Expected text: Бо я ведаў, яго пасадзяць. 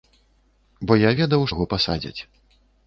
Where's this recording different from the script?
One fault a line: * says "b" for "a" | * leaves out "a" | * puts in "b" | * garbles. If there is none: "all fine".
all fine